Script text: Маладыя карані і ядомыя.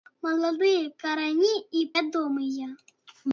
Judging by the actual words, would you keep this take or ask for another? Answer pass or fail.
pass